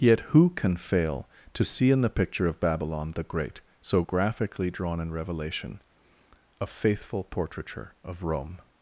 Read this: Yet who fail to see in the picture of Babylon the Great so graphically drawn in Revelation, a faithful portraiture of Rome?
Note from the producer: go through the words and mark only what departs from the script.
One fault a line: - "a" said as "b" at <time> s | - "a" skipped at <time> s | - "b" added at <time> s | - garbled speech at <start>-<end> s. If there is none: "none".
- "can" added at 0.5 s